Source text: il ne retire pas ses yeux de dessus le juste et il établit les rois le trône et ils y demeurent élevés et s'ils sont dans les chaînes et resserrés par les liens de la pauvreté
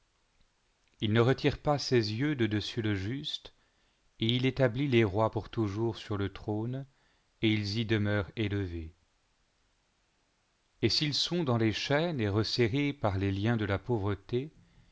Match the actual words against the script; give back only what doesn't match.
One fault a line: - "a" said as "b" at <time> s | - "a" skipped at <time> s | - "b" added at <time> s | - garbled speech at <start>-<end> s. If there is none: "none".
- "pour toujours sur" added at 5.3 s